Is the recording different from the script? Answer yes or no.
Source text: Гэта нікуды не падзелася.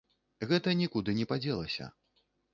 no